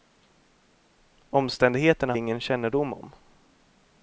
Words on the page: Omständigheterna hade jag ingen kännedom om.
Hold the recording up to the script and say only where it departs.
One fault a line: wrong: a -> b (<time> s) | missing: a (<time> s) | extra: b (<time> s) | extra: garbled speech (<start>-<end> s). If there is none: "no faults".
missing: hade (2.1 s)